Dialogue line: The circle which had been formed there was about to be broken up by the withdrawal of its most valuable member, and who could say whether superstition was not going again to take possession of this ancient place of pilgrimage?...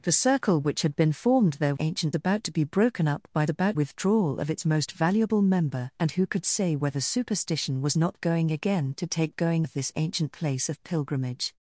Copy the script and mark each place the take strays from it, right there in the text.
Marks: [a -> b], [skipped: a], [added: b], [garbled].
The circle which had been formed there [was -> ancient] about to be broken up by [the -> about] withdrawal of its most valuable member, and who could say whether superstition was not going again to take [possession -> going] of this ancient place of pilgrimage?...